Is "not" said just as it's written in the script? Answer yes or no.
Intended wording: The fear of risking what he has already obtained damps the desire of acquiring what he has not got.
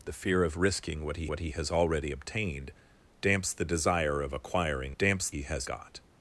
no